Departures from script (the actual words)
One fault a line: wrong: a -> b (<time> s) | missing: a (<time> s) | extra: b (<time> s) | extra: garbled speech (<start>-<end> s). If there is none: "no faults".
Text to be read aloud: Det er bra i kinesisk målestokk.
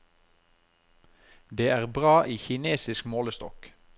no faults